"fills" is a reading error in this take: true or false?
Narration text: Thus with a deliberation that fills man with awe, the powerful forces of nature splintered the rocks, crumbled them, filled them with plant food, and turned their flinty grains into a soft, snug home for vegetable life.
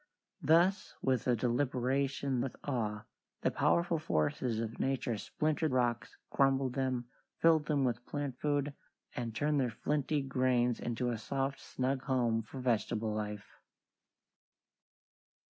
true